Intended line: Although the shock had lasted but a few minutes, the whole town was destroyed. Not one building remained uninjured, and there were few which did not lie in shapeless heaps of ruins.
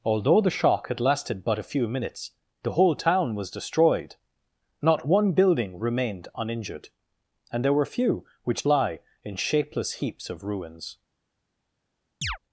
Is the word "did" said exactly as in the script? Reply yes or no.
no